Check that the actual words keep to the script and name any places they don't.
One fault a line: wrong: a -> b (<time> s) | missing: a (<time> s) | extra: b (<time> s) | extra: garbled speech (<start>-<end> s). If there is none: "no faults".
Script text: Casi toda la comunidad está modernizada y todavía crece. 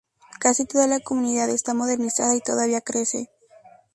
no faults